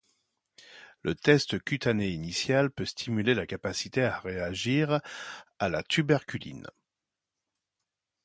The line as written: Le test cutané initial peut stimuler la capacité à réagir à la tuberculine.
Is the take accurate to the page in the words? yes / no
yes